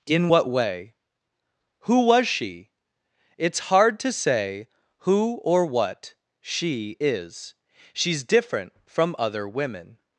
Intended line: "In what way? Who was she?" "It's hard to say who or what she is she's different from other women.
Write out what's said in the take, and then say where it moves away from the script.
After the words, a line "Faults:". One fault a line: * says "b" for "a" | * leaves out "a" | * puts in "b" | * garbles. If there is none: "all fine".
"In what way? Who was she?" "It's hard to say who or what she is she's different from other women.
Faults:
all fine